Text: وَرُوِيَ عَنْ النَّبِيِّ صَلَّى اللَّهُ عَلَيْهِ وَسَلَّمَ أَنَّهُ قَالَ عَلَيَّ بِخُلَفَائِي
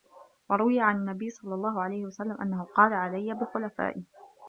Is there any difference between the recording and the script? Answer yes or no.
no